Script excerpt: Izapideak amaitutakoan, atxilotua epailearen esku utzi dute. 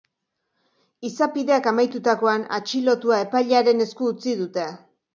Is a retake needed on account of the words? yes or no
no